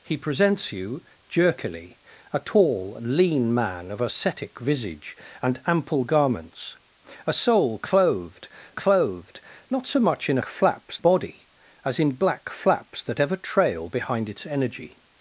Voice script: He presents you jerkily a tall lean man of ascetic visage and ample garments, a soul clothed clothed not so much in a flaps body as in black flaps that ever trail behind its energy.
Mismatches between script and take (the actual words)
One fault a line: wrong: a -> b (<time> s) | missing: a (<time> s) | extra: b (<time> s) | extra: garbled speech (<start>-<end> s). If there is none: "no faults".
no faults